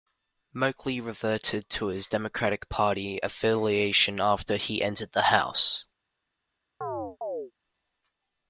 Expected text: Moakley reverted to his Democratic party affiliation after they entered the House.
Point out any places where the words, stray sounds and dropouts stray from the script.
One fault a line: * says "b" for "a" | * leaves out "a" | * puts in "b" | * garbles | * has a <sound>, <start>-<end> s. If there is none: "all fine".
* says "he" for "they"
* has a chirp, 6.8-7.5 s